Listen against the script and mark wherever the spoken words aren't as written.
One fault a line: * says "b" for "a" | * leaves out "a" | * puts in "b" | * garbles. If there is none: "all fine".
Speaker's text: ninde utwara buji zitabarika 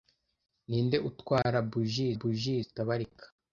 * puts in "buji"